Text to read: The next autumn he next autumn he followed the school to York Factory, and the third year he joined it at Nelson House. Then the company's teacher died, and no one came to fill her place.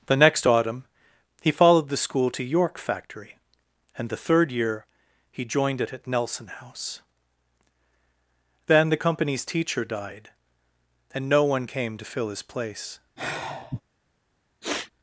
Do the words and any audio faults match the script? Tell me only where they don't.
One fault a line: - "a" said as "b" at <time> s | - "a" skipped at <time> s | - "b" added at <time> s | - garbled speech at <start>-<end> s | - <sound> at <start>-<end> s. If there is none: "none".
- "next autumn he" skipped at 1.5 s
- "her" said as "his" at 12.3 s
- sigh at 13.2-13.8 s
- sniff at 14.6-14.9 s